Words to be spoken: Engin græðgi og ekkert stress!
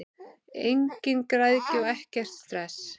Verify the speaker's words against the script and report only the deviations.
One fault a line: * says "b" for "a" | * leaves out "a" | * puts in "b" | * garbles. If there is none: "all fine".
all fine